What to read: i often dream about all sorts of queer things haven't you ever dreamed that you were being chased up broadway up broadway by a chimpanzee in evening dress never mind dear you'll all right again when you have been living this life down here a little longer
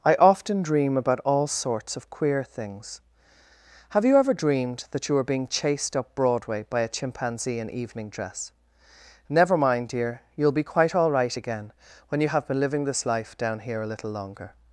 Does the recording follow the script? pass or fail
fail